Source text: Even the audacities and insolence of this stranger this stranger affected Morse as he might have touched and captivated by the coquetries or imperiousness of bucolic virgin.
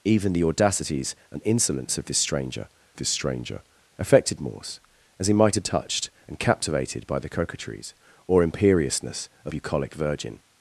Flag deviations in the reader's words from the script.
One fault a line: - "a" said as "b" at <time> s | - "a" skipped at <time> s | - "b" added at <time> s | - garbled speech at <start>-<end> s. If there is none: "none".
none